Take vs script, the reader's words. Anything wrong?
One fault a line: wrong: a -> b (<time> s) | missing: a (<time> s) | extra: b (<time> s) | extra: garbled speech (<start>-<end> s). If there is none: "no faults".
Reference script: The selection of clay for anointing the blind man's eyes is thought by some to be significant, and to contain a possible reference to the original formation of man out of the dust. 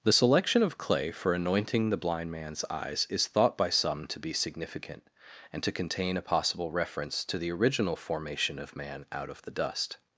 no faults